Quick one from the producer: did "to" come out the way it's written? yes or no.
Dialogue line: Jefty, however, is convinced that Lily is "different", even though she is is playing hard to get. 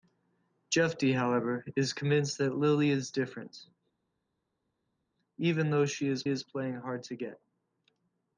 yes